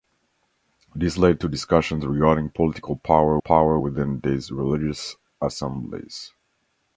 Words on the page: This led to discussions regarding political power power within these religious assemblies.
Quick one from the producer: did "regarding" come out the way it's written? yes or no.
yes